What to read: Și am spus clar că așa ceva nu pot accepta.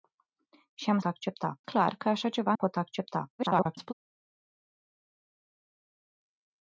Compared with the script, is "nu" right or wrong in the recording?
wrong